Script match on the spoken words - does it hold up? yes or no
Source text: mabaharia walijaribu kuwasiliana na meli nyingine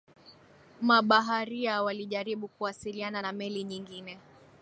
yes